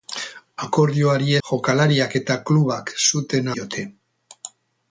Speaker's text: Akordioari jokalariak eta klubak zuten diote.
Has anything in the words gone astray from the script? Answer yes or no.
no